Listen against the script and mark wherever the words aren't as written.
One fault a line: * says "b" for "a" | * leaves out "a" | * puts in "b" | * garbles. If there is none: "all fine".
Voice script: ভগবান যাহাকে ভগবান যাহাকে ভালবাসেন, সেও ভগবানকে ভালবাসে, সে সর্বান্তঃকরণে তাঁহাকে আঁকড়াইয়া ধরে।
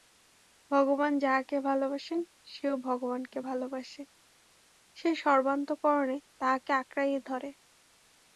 * leaves out "ভগবান যাহাকে"